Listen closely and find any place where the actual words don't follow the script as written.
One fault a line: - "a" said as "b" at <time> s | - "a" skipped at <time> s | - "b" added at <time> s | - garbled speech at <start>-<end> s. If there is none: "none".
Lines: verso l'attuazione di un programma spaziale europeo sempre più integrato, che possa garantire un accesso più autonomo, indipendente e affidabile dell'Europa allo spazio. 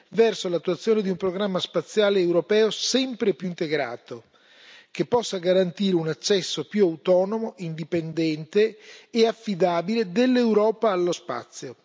none